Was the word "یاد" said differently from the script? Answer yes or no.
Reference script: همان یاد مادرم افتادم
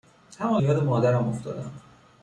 no